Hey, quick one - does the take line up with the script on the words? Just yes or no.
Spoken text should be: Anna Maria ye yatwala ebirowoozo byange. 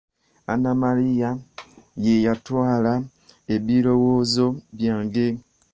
yes